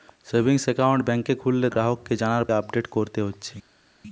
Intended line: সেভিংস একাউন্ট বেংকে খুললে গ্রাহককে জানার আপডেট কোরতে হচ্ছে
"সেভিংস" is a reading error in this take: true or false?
false